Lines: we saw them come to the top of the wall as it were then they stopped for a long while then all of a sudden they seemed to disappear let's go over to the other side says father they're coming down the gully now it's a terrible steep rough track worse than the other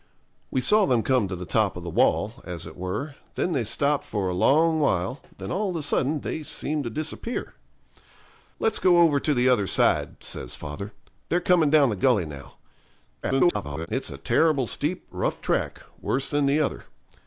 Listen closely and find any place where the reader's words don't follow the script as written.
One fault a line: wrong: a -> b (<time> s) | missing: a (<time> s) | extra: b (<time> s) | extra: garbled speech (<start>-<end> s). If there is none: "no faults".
extra: garbled speech (13.2-13.9 s)